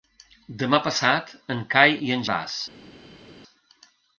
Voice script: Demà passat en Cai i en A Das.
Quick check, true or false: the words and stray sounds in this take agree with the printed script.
true